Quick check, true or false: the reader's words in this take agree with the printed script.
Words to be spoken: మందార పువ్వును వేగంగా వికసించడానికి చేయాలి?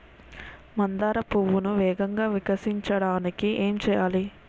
false